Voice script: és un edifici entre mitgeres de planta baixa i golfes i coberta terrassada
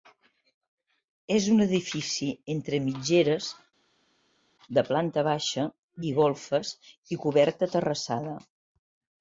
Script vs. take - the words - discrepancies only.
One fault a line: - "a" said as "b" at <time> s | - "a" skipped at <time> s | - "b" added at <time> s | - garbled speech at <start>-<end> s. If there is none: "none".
none